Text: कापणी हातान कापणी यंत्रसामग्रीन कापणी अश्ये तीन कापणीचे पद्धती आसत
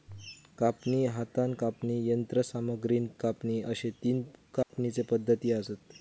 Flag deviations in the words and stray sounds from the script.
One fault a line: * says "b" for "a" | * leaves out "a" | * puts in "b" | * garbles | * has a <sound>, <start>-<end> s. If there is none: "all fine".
* has a dropout, 4.6-4.7 s